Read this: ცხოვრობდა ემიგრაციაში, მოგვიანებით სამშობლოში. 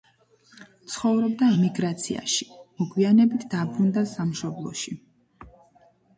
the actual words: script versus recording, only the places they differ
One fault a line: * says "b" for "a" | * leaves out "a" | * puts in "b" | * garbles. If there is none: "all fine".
* puts in "დაბრუნდა"